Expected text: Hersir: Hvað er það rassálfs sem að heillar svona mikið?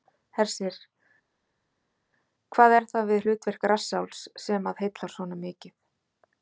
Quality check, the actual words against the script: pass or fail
fail